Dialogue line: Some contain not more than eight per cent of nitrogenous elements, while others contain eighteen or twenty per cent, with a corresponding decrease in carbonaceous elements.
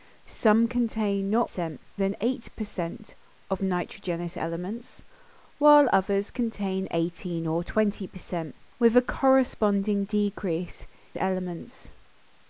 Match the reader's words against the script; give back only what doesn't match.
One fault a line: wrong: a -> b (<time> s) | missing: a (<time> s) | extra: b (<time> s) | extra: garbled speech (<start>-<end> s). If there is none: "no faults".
wrong: more -> cent (1.4 s)
missing: in carbonaceous (10.8 s)